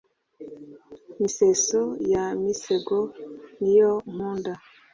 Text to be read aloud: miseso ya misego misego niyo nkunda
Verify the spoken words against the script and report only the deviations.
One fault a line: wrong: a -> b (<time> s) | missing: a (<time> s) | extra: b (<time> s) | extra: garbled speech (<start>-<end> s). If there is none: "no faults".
missing: misego (3.0 s)